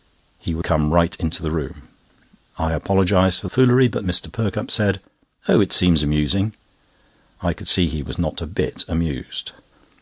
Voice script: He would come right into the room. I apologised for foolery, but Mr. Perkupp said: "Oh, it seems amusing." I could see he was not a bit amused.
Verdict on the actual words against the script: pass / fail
pass